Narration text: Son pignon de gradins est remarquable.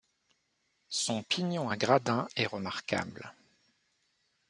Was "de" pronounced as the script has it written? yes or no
no